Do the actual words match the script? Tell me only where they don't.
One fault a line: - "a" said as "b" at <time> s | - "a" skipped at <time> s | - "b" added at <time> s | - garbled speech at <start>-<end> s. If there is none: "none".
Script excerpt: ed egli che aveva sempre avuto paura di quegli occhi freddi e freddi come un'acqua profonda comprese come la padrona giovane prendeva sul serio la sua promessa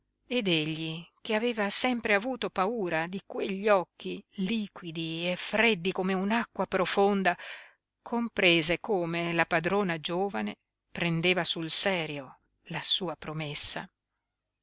- "freddi" said as "liquidi" at 4.4 s